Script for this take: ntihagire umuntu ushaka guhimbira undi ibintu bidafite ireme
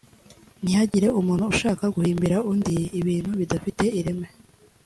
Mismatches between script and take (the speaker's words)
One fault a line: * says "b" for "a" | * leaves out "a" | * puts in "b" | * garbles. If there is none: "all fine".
all fine